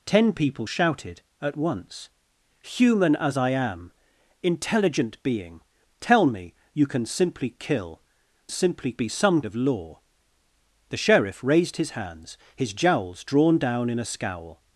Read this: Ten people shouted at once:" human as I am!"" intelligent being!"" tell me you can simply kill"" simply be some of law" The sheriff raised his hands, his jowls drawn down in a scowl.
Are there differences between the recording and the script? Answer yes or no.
no